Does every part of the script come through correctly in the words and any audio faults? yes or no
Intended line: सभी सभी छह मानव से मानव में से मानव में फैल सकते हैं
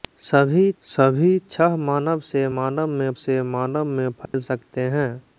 no